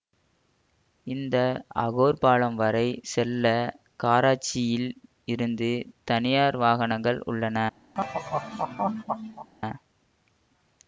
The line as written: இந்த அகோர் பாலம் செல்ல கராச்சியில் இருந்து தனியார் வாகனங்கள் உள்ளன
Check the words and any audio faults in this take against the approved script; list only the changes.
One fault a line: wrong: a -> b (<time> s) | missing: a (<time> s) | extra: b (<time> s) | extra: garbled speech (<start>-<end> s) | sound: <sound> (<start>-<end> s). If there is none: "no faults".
extra: வரை (2.6 s)
sound: laugh (7.9-9.5 s)